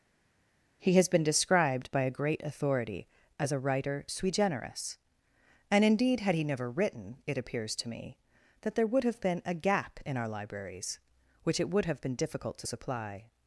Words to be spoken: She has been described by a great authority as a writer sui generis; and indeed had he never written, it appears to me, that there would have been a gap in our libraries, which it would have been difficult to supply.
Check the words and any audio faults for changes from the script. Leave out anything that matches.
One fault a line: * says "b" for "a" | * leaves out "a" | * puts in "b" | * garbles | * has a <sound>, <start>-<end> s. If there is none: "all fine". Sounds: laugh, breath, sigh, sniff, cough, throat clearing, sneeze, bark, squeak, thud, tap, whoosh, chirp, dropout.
* says "He" for "She"